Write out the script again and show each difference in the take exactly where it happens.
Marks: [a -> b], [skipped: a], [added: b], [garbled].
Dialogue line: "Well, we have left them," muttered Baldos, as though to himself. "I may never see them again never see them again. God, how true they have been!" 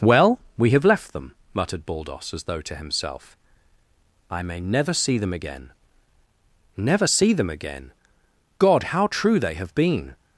"Well, we have left them," muttered Baldos, as though to himself. "I may never see them again never see them again. God, how true they have been!"